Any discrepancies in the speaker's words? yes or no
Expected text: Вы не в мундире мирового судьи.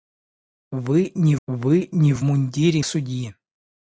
yes